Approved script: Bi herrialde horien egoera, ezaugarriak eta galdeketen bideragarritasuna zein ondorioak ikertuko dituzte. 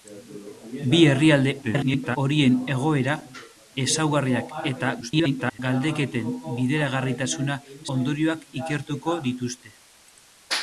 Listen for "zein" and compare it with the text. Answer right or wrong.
wrong